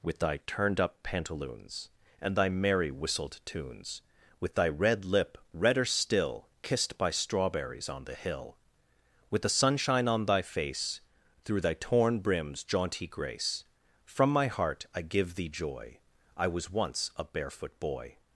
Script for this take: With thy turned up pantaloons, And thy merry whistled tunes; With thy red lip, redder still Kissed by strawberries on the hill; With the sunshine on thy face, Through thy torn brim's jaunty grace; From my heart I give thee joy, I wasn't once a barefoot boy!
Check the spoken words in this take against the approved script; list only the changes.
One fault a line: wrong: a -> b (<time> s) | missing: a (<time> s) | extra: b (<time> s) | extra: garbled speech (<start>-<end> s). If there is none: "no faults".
wrong: wasn't -> was (16.5 s)